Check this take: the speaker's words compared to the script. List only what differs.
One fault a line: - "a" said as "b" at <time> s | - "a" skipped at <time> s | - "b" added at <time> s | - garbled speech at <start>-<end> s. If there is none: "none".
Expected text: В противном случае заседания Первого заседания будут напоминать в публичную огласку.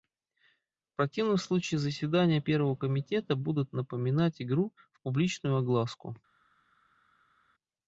- "заседания" said as "комитета" at 2.8 s
- "игру" added at 4.4 s